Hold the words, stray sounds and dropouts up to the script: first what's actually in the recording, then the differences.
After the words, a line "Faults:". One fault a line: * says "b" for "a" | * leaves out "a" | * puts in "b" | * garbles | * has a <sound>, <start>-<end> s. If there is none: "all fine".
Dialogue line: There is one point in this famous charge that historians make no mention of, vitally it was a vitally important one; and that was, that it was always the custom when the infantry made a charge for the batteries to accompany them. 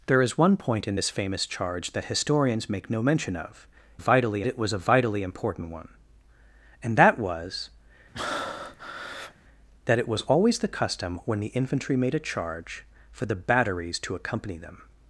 There is one point in this famous charge that historians make no mention of, vitally it was a vitally important one; and that was, that it was always the custom when the infantry made a charge for the batteries to accompany them.
Faults:
* has a breath, 8.1-9.3 s